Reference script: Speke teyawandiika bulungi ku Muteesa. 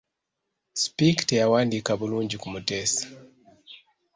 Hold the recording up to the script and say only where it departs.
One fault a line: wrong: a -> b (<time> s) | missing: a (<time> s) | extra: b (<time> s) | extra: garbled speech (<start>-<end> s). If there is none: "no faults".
no faults